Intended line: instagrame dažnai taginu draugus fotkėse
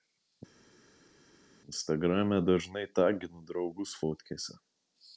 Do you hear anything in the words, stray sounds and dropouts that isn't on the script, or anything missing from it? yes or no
no